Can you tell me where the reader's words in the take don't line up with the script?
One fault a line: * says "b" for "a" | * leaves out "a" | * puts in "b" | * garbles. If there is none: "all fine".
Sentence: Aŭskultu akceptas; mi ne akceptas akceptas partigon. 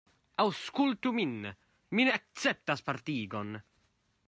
* says "min" for "akceptas"
* leaves out "akceptas"